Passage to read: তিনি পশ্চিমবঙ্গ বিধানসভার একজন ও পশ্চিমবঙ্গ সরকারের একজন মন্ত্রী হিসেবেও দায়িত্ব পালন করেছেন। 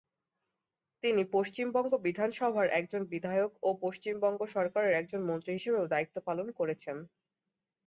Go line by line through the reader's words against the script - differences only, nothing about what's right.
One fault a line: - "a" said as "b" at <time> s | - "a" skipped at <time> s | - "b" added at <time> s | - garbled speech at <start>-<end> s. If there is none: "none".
- "বিধায়ক" added at 3.1 s